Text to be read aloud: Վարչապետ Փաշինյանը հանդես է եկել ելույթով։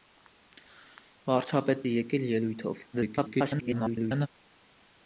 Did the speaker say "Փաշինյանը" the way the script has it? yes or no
no